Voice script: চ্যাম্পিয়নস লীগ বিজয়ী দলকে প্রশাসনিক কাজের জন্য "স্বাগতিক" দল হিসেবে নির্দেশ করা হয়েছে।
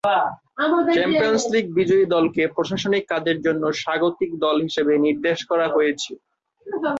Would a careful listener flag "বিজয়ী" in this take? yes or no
no